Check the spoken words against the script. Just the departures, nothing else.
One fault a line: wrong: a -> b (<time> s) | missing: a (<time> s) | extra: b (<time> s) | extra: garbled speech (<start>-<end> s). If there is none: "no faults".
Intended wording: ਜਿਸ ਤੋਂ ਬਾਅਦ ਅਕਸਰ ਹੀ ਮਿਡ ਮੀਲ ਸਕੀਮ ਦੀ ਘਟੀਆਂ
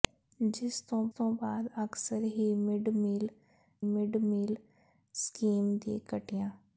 extra: ਤੋਂ (1.1 s)
extra: ਮਿਡ ਮੀਲ (3.8 s)